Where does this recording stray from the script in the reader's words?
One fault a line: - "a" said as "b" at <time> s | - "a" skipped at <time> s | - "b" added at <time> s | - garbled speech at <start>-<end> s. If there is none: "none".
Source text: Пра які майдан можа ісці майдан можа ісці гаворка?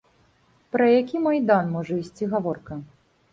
- "майдан можа ісці" skipped at 2.2 s